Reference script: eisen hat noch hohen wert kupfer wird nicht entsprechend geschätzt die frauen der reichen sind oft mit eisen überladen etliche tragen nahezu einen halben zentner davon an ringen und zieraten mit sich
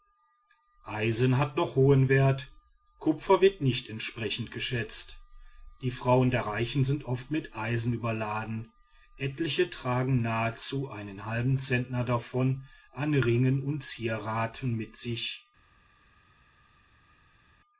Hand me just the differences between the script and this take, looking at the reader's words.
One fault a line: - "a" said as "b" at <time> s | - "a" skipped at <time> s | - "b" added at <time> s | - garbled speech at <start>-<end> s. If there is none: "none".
none